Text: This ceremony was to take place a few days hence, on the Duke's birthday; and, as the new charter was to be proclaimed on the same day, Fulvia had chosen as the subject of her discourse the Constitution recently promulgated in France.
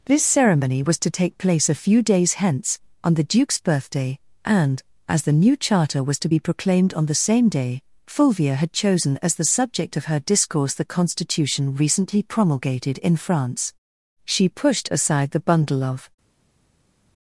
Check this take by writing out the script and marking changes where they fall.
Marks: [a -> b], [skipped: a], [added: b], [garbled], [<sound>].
This ceremony was to take place a few days hence, on the Duke's birthday; and, as the new charter was to be proclaimed on the same day, Fulvia had chosen as the subject of her discourse the Constitution recently promulgated in France. [added: She pushed aside the bundle of]